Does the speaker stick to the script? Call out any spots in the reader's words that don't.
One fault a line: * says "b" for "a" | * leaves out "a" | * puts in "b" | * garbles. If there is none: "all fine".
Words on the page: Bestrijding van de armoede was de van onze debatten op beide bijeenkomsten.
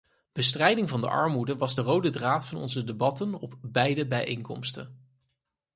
* puts in "rode draad"